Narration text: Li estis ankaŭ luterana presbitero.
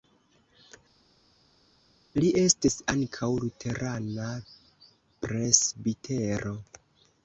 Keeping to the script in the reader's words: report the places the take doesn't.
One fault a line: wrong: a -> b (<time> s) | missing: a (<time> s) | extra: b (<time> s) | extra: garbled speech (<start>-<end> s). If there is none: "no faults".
no faults